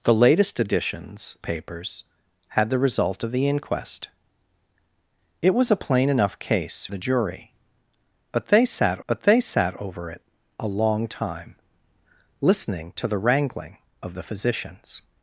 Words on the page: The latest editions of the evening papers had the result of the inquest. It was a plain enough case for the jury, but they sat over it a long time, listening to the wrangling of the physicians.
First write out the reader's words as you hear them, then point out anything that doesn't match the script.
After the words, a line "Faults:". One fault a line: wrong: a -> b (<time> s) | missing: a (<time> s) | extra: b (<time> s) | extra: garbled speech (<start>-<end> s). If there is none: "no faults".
The latest editions papers had the result of the inquest. It was a plain enough case the jury, but they sat but they sat over it a long time, listening to the wrangling of the physicians.
Faults:
missing: of the evening (1.4 s)
missing: for (6.9 s)
extra: but they sat (9.1 s)